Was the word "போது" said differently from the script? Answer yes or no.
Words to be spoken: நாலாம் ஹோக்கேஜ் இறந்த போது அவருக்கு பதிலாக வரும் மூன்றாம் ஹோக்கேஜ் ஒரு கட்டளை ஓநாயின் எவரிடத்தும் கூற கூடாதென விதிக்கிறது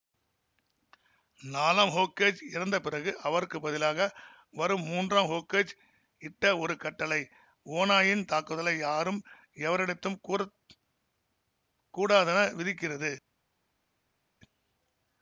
yes